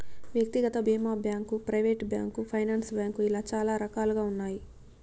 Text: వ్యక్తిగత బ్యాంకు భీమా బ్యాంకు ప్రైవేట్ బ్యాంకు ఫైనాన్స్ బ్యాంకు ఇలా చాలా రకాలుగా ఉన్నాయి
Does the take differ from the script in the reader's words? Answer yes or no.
yes